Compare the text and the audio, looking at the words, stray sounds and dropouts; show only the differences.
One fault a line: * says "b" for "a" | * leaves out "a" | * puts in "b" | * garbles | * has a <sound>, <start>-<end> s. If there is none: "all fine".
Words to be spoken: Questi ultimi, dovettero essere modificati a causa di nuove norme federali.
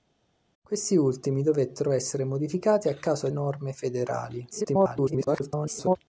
* leaves out "di nuove"
* garbles